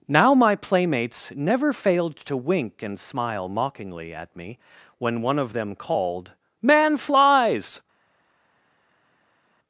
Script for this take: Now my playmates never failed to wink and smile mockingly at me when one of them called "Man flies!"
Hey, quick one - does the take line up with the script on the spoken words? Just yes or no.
yes